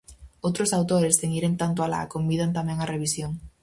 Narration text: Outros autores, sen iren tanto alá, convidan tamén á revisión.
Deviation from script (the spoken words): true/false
false